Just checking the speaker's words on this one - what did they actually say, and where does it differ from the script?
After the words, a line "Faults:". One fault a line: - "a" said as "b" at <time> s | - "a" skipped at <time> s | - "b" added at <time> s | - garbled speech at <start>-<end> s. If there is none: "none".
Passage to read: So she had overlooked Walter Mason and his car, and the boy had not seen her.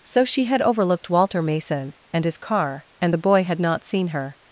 So she had overlooked Walter Mason and his car, and the boy had not seen her.
Faults:
none